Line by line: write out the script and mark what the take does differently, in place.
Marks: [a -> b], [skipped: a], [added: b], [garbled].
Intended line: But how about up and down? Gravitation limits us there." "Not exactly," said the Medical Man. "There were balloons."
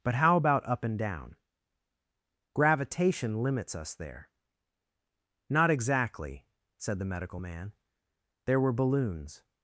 But how about up and down? Gravitation limits us there." "Not exactly," said the Medical Man. "There were balloons."